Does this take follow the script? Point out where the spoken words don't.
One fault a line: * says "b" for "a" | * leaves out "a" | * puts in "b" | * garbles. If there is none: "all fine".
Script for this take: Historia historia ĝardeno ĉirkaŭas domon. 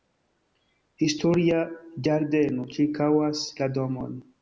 * leaves out "historia"
* puts in "la"